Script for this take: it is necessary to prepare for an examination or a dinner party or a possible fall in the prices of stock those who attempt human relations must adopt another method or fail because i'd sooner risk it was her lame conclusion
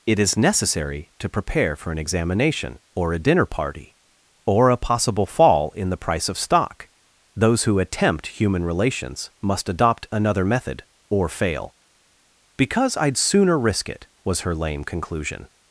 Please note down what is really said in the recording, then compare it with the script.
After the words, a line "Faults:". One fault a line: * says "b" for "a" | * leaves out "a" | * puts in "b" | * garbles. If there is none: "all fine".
it is necessary to prepare for an examination or a dinner party or a possible fall in the price of stock those who attempt human relations must adopt another method or fail because i'd sooner risk it was her lame conclusion
Faults:
* says "price" for "prices"